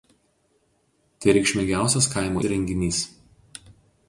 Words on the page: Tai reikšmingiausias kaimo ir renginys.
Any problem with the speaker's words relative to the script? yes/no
no